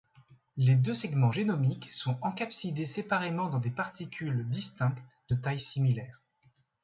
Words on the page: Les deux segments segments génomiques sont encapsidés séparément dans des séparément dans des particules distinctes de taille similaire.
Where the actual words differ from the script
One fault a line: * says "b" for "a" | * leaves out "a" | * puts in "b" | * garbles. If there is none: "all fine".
* leaves out "segments"
* leaves out "séparément dans des"